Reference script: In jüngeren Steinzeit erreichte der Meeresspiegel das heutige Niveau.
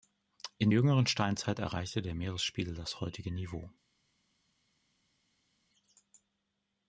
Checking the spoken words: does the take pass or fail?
pass